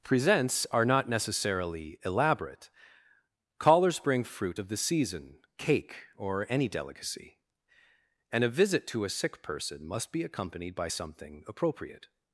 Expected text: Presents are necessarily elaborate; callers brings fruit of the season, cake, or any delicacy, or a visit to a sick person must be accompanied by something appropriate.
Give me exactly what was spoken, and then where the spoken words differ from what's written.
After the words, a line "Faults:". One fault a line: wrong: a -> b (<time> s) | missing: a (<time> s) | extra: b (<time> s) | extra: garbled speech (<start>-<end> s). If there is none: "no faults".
Presents are not necessarily elaborate; callers bring fruit of the season, cake, or any delicacy, and a visit to a sick person must be accompanied by something appropriate.
Faults:
extra: not (0.8 s)
wrong: brings -> bring (4.0 s)
wrong: or -> and (8.3 s)